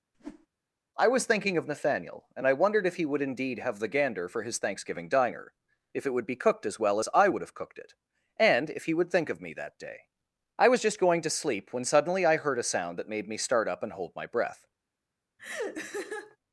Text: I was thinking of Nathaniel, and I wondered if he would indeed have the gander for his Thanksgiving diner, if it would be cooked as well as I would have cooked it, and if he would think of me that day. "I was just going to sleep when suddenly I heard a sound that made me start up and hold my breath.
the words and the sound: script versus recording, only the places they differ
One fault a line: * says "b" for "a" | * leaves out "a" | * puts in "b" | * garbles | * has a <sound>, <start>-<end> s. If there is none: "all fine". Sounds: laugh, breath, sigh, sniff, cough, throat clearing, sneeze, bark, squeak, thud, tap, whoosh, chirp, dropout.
* has a whoosh, 0.1-0.5 s
* has a laugh, 15.4-16.4 s